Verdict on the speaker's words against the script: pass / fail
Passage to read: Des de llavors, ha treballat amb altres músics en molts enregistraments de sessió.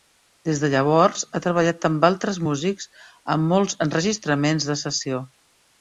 pass